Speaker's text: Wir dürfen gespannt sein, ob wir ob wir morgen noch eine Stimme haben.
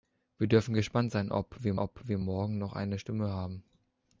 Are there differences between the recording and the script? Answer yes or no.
no